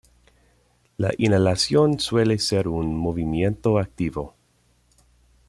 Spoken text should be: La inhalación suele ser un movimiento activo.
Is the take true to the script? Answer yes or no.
yes